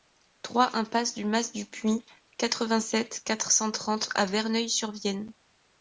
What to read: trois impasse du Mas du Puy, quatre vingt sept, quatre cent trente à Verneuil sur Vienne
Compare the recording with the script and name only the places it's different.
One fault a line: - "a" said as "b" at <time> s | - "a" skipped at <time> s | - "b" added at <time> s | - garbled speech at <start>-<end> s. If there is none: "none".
none